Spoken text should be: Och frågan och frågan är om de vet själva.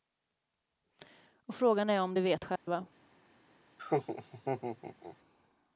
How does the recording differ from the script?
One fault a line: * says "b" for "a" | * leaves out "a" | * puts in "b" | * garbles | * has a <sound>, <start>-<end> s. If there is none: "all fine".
* leaves out "och frågan"
* has a dropout, 2.6-2.7 s
* has a laugh, 3.8-5.2 s